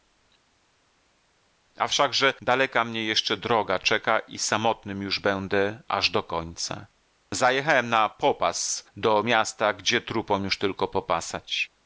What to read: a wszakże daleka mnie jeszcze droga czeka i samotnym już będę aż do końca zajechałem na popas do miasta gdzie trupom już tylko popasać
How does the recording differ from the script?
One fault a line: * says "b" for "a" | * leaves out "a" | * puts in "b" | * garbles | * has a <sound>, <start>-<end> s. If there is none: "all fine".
all fine